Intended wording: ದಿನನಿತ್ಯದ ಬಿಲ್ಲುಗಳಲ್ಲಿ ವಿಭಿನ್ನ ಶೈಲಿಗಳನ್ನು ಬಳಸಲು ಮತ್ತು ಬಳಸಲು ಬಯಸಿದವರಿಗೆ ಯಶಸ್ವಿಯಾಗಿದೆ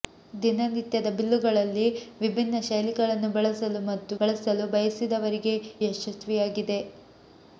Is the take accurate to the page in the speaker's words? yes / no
yes